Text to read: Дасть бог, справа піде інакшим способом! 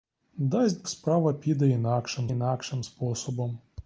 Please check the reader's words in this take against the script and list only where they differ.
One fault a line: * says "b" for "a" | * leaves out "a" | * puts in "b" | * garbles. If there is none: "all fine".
* leaves out "бог"
* puts in "інакшим"